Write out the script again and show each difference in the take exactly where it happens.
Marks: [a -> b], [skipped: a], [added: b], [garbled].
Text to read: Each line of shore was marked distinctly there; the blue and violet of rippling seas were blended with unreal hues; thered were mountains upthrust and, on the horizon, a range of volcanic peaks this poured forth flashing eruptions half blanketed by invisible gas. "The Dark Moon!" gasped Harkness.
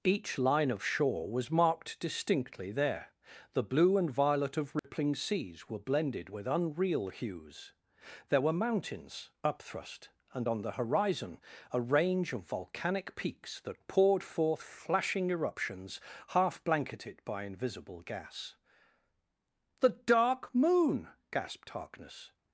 Each line of shore was marked distinctly there; the blue and violet of rippling seas were blended with unreal hues; [thered -> there] were mountains upthrust and, on the horizon, a range of volcanic peaks [this -> that] poured forth flashing eruptions half blanketed by invisible gas. "The Dark Moon!" gasped Harkness.